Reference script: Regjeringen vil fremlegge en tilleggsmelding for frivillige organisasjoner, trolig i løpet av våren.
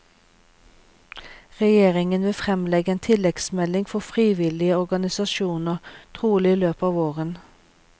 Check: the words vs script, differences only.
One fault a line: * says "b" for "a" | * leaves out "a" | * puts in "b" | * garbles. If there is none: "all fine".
all fine